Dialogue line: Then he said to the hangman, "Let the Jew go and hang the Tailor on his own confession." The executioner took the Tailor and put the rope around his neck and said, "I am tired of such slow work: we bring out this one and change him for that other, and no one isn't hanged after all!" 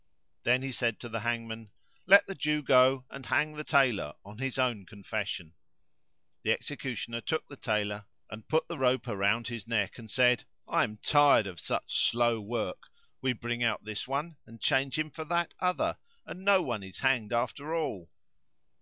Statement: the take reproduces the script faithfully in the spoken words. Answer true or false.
false